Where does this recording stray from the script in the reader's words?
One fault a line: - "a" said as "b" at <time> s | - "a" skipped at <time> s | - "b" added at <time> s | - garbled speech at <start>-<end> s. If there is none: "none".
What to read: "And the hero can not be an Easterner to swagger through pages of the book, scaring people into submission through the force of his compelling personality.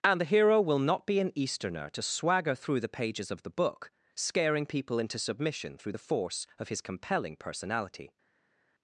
- "can" said as "will" at 0.6 s
- "the" added at 2.8 s